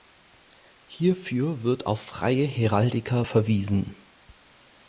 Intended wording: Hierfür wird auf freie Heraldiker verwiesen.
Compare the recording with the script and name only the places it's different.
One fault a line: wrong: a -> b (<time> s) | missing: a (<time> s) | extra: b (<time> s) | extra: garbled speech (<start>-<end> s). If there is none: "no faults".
no faults